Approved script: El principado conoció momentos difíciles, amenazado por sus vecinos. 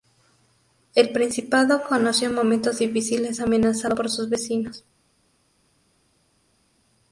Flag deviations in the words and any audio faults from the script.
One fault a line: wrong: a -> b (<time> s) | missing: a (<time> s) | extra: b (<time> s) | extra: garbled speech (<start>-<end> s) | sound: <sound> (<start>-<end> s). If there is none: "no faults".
no faults